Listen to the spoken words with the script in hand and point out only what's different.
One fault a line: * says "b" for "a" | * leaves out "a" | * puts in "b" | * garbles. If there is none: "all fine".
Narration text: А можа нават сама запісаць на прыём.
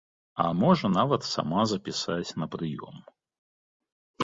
all fine